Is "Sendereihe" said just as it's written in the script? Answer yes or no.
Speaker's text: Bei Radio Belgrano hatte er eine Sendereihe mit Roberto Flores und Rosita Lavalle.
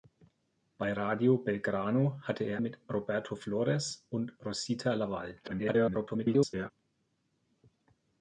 no